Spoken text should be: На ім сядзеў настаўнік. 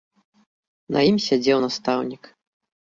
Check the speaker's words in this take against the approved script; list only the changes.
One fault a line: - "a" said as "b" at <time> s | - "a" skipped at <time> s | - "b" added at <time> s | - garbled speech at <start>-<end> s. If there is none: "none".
none